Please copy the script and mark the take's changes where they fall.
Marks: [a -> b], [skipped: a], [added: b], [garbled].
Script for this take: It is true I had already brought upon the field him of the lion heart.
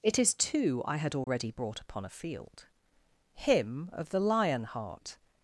It is [true -> two] I had already brought upon [the -> a] field him of the lion heart.